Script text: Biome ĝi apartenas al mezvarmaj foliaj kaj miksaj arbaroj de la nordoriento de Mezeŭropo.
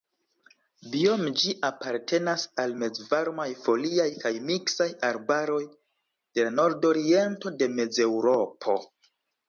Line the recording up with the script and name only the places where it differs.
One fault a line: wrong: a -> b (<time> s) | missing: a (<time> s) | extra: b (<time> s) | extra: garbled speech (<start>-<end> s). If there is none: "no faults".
no faults